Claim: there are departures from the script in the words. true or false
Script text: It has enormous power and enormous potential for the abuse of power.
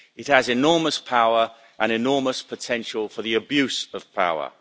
false